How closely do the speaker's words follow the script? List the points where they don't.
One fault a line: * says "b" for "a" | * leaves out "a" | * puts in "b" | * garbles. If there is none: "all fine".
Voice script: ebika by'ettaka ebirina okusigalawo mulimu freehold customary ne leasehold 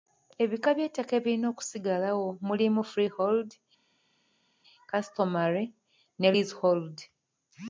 all fine